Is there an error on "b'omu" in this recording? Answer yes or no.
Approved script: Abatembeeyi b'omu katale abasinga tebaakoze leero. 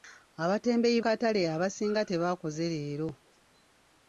yes